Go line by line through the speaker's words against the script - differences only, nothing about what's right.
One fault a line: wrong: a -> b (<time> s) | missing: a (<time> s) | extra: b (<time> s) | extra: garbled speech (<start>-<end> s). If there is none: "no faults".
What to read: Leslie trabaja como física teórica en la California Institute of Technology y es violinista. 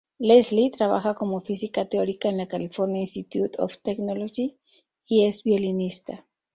no faults